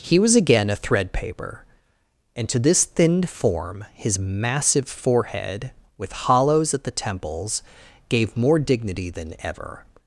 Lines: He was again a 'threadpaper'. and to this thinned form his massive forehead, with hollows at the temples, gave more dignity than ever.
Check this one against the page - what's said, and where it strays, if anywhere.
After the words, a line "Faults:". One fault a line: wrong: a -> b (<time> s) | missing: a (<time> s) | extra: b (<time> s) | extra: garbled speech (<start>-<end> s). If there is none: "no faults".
He was again a 'threadpaper'. and to this thinned form his massive forehead, with hollows at the temples, gave more dignity than ever.
Faults:
no faults